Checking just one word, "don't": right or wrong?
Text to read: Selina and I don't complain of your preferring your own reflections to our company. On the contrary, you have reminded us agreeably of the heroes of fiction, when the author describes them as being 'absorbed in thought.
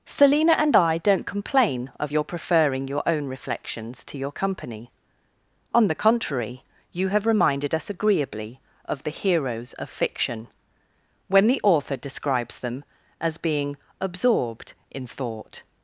right